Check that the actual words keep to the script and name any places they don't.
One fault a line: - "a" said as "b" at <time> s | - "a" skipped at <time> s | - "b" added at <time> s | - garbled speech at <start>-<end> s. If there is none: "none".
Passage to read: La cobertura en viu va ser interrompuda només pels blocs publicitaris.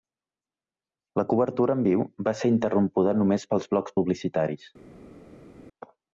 none